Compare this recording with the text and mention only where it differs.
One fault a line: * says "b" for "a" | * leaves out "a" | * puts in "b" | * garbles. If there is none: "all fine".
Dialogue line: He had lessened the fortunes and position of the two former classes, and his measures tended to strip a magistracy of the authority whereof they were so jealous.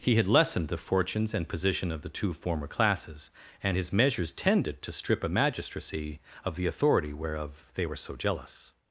all fine